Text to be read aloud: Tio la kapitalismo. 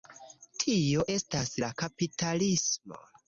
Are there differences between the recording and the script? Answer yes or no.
yes